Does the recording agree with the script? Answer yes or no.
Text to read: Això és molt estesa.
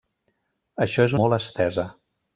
yes